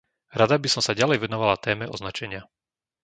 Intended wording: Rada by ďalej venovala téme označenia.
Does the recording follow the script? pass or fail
fail